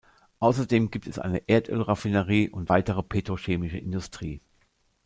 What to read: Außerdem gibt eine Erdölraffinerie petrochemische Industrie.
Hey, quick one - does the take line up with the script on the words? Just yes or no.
no